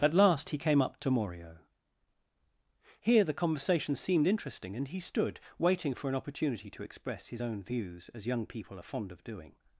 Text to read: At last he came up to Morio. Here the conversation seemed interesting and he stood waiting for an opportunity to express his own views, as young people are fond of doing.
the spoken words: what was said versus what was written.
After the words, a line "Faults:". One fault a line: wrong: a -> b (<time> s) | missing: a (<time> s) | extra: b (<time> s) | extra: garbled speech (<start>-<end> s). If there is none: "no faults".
At last he came up to Morio. Here the conversation seemed interesting and he stood waiting for an opportunity to express his own views, as young people are fond of doing.
Faults:
no faults